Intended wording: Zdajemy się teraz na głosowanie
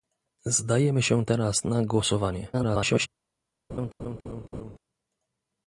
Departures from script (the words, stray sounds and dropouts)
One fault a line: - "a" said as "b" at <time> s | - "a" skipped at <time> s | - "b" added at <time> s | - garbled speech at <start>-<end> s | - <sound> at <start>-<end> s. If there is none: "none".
- garbled speech at 2.5-3.1 s
- laugh at 3.7-4.8 s